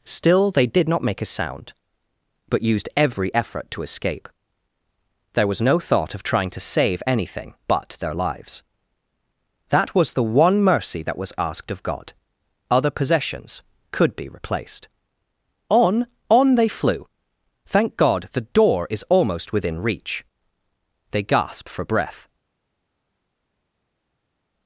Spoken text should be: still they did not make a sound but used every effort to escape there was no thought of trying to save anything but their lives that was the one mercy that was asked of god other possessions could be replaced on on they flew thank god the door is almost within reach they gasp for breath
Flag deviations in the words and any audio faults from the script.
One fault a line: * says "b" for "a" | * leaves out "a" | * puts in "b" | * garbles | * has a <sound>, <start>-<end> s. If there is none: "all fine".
all fine